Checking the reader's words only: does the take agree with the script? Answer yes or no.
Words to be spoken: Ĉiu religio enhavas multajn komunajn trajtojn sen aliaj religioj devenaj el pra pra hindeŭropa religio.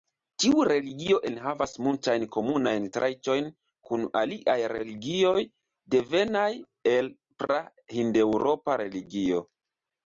no